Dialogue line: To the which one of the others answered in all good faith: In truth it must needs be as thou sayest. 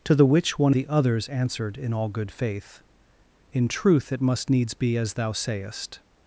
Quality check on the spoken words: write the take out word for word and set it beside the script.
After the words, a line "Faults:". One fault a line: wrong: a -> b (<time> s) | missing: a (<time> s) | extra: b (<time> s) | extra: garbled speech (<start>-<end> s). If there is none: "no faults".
To the which one the others answered in all good faith: In truth it must needs be as thou sayest.
Faults:
missing: of (0.7 s)